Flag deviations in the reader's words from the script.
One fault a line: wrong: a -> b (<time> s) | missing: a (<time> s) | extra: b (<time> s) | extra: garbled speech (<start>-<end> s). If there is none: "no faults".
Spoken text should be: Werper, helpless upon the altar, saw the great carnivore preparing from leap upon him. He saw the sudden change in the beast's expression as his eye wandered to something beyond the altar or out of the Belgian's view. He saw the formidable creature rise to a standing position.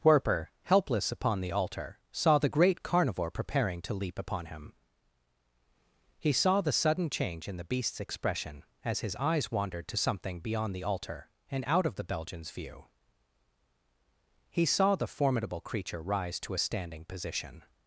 wrong: from -> to (3.8 s)
wrong: eye -> eyes (9.2 s)
wrong: or -> and (11.5 s)